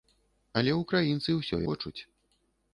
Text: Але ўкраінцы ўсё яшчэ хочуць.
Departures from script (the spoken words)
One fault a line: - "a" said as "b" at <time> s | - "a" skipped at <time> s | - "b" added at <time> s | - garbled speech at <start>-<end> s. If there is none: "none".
- "яшчэ" skipped at 1.6 s